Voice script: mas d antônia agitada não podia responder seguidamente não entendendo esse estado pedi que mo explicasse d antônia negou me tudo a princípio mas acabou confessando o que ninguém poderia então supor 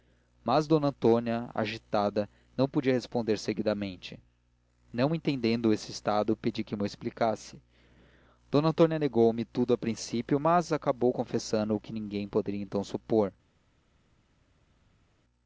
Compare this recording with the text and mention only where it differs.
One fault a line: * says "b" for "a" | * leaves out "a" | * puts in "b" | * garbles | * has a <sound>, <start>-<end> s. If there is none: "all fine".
all fine